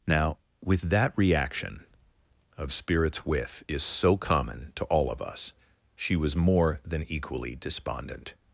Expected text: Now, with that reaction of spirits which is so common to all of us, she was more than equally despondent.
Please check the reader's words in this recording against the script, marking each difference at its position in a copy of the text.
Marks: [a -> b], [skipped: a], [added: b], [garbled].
Now, with that reaction of spirits [which -> with] is so common to all of us, she was more than equally despondent.